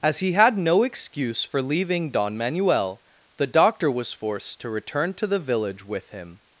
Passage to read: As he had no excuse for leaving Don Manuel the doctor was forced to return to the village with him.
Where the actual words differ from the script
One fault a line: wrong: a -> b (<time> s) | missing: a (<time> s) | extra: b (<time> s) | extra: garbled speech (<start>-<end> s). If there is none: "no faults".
no faults